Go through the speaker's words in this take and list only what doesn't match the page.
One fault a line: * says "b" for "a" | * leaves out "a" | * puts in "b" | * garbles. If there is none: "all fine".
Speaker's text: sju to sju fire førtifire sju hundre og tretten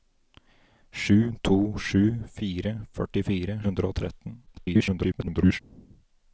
* leaves out "sju"
* garbles